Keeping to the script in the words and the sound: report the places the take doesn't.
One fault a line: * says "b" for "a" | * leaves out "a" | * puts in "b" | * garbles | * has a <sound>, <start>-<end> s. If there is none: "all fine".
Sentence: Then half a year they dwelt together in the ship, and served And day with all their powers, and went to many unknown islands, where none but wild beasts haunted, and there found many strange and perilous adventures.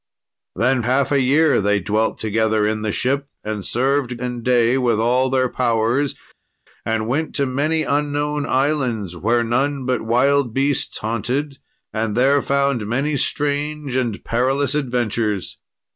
all fine